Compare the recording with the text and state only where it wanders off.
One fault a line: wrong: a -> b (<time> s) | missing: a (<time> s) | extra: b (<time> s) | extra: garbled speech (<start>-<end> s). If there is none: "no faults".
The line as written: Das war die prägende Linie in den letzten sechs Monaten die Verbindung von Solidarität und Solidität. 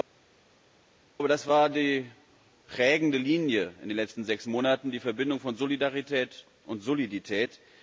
no faults